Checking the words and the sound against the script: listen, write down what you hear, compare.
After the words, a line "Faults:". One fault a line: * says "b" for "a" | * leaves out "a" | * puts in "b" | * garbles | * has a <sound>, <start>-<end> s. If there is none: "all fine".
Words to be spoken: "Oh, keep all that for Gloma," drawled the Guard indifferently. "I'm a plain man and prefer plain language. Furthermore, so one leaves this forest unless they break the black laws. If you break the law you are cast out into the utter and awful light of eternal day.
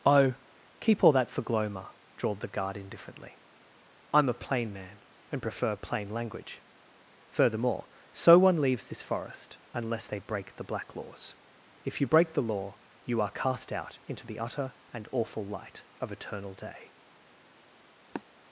"Oh, keep all that for Gloma," drawled the Guard indifferently. "I'm a plain man and prefer plain language. Furthermore, so one leaves this forest unless they break the black laws. If you break the law you are cast out into the utter and awful light of eternal day.
Faults:
* has a sniff, 18.1-18.2 s